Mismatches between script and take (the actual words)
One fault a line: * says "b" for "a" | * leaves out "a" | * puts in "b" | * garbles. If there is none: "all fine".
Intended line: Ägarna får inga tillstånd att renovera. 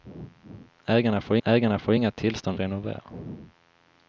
* puts in "ägarna får"
* leaves out "att"